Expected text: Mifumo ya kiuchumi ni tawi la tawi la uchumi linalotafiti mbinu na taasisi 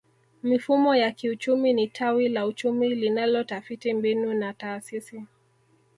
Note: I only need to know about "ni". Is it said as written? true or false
true